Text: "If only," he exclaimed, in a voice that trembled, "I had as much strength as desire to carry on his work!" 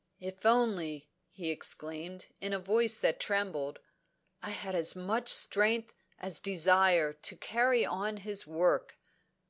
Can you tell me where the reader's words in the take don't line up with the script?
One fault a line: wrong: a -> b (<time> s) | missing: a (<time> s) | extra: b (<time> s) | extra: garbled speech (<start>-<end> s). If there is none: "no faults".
no faults